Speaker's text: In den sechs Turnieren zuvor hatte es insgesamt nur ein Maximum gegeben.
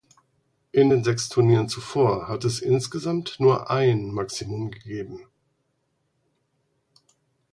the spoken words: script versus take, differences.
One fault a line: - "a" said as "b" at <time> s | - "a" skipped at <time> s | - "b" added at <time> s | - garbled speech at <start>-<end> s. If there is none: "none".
none